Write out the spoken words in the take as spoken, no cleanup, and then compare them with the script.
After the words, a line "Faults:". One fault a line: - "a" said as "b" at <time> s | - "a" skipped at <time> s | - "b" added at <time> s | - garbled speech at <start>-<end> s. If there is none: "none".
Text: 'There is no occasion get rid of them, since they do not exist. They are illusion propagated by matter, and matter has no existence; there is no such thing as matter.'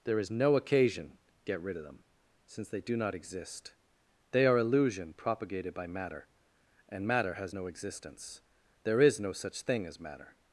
'There is no occasion get rid of them, since they do not exist. They are illusion propagated by matter, and matter has no existence; there is no such thing as matter.'
Faults:
none